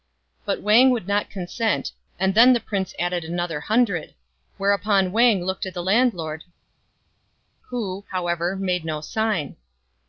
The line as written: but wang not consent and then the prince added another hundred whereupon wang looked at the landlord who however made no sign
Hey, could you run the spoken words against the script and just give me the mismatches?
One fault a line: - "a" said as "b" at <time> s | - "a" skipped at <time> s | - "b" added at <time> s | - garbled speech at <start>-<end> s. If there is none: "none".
- "would" added at 0.9 s